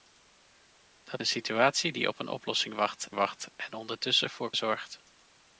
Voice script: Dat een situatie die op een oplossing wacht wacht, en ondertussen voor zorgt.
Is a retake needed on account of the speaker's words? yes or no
no